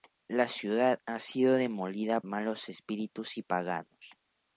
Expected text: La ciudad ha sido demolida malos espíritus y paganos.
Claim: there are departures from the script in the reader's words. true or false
false